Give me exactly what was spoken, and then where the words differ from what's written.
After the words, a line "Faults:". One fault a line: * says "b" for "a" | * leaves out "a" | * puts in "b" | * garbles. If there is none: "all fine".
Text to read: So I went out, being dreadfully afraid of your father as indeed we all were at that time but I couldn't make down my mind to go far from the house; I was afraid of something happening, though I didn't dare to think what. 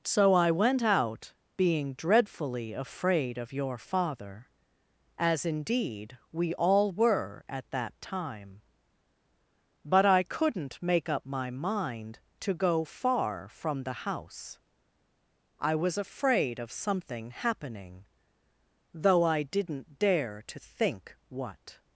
So I went out, being dreadfully afraid of your father as indeed we all were at that time but I couldn't make up my mind to go far from the house; I was afraid of something happening, though I didn't dare to think what.
Faults:
* says "up" for "down"